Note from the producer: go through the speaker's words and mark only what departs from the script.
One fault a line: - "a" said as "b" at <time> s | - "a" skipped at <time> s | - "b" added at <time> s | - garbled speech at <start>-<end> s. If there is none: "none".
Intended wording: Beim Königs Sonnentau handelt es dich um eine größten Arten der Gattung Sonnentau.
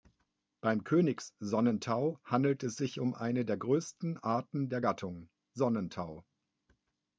- "dich" said as "sich" at 2.8 s
- "der" added at 3.5 s